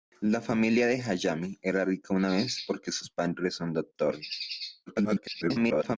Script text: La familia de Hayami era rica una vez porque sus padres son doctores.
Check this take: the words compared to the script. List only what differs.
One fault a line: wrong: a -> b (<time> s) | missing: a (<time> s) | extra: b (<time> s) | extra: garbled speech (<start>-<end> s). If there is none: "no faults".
extra: garbled speech (4.9-6.0 s)